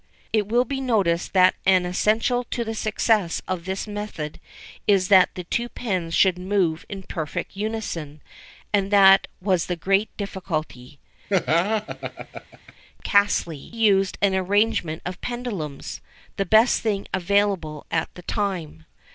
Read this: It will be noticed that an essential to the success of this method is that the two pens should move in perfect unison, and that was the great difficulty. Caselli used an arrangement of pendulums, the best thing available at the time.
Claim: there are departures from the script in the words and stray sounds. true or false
true